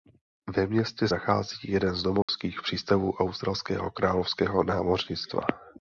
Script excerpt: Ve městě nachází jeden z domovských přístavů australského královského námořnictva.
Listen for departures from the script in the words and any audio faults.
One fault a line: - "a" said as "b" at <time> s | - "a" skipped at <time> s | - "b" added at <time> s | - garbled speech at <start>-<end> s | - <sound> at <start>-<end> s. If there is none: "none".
- dropout at 2.2-2.3 s